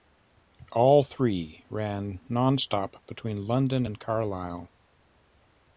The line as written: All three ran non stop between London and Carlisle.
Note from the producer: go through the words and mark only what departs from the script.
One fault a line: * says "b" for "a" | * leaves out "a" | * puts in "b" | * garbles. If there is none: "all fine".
all fine